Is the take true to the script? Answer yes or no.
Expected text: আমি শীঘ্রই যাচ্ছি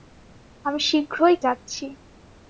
yes